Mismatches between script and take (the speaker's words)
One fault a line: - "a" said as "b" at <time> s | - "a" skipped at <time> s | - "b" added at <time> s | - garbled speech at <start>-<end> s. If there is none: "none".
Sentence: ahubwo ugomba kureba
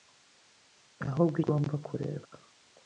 none